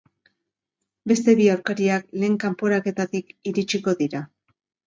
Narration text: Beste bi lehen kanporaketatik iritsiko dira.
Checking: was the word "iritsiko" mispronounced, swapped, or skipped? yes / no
no